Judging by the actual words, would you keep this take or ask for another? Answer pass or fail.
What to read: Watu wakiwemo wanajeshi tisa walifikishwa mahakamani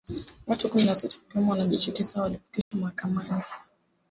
fail